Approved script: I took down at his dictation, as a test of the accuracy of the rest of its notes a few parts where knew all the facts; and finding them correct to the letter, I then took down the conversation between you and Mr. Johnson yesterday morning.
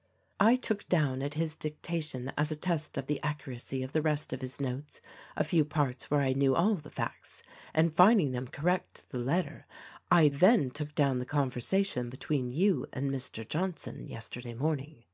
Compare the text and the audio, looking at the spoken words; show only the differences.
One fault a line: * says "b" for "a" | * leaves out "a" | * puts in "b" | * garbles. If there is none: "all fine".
* says "his" for "its"
* puts in "I"